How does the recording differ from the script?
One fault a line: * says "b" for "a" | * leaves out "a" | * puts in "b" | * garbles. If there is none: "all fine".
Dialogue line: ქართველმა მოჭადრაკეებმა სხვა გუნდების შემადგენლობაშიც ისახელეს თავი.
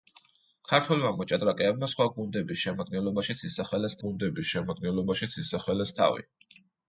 * puts in "გუნდების შემადგენლობაშიც ისახელეს"